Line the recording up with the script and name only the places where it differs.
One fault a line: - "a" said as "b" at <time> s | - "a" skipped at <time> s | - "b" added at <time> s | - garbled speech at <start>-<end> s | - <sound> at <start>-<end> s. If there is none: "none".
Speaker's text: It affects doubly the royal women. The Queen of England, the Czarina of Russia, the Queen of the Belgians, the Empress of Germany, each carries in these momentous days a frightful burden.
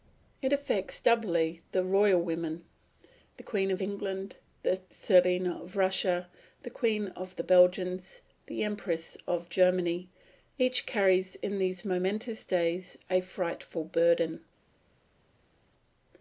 none